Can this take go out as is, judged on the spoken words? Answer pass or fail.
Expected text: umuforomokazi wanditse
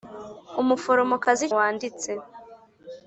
pass